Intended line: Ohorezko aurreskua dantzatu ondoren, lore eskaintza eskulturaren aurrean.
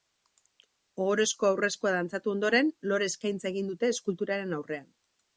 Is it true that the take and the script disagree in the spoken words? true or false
true